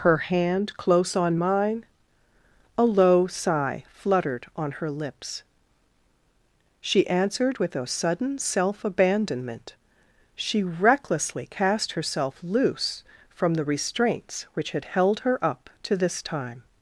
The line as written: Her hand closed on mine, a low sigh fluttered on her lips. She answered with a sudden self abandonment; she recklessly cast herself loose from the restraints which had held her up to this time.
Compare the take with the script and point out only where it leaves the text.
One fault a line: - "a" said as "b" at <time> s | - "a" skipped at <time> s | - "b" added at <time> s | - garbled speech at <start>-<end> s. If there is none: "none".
- "closed" said as "close" at 0.8 s